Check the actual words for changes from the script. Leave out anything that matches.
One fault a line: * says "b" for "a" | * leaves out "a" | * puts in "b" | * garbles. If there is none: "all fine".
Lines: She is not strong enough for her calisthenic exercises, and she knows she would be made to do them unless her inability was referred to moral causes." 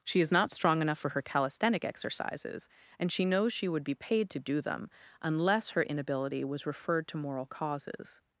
* says "paid" for "made"